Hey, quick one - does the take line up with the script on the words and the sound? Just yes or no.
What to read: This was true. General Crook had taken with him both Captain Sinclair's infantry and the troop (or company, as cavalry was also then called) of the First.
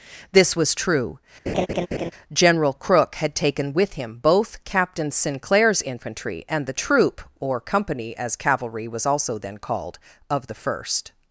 no